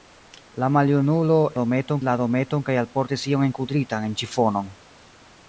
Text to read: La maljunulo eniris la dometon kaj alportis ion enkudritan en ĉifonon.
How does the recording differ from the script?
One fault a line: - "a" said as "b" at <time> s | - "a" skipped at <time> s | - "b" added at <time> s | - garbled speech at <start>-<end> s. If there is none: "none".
- "eniris" said as "dometon" at 1.6 s